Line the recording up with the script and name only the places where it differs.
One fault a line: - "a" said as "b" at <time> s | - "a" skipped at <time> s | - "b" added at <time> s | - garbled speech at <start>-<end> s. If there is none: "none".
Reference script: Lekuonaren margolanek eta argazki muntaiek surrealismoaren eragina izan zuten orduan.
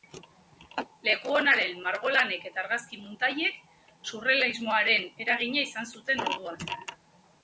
none